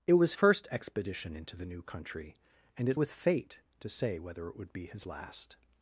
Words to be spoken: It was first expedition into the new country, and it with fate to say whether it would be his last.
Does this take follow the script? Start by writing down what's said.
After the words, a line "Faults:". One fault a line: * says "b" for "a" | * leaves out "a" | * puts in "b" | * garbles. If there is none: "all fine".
It was first expedition into the new country, and it with fate to say whether it would be his last.
Faults:
all fine